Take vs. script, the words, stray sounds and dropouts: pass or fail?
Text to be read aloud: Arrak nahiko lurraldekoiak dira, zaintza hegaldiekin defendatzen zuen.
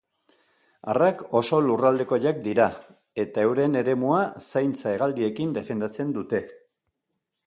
fail